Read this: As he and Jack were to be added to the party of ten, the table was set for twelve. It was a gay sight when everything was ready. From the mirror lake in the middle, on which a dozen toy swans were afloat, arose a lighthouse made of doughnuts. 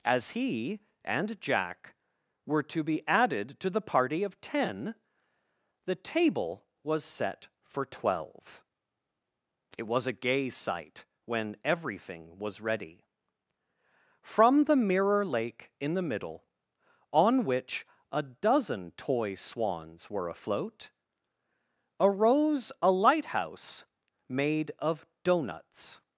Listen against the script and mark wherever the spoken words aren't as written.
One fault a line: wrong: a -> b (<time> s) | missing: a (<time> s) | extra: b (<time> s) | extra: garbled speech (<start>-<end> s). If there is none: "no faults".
no faults